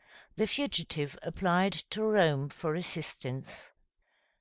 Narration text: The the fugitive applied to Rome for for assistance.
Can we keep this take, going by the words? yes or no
no